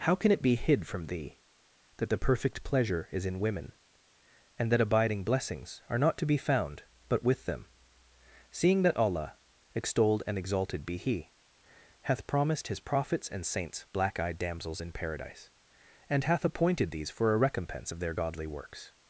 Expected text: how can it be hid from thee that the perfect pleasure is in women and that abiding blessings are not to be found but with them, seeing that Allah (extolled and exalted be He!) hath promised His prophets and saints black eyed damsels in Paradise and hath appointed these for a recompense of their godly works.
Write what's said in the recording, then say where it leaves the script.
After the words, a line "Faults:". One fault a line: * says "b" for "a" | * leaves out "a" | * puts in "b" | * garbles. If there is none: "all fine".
how can it be hid from thee that the perfect pleasure is in women and that abiding blessings are not to be found but with them, seeing that Allah (extolled and exalted be He!) hath promised His prophets and saints black eyed damsels in Paradise and hath appointed these for a recompense of their godly works.
Faults:
all fine